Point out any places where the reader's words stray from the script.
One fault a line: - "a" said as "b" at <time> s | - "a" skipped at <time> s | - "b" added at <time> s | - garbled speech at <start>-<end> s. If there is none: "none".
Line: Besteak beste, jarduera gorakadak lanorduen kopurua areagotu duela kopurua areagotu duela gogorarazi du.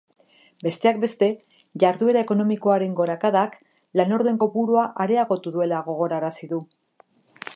- "ekonomikoaren" added at 2.2 s
- "kopurua areagotu duela" skipped at 5.8 s